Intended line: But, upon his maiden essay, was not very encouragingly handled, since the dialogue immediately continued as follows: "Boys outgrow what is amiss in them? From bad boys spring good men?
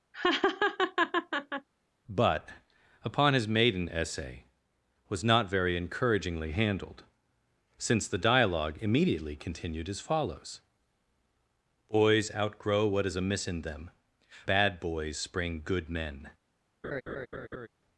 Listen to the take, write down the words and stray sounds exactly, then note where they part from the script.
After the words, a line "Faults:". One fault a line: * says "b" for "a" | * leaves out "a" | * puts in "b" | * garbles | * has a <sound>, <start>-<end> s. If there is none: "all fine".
But, upon his maiden essay, was not very encouragingly handled, since the dialogue immediately continued as follows: "Boys outgrow what is amiss in them? Bad boys spring good men?
Faults:
* has a laugh, 0.1-1.7 s
* leaves out "From"
* has a laugh, 16.8-17.7 s